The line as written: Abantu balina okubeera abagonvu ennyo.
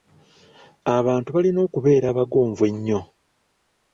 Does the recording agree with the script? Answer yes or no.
yes